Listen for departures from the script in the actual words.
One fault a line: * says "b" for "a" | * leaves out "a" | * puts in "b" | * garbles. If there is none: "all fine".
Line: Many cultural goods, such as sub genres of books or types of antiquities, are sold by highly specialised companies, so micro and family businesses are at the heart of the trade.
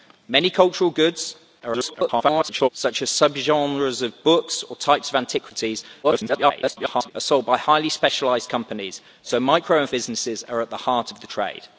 * garbles
* garbles
* leaves out "family"